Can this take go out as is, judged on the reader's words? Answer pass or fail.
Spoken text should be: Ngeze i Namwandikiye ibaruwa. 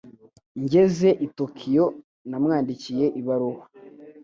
fail